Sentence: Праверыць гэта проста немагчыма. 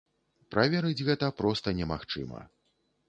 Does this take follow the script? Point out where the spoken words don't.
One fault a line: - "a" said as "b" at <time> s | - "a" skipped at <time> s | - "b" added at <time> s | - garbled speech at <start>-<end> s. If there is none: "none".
none